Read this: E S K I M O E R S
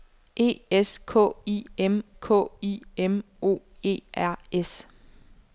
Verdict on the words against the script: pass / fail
fail